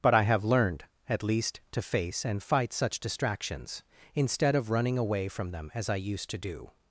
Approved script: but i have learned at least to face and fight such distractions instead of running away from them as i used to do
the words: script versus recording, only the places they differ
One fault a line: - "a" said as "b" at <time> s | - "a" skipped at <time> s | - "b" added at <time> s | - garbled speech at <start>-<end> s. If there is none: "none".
none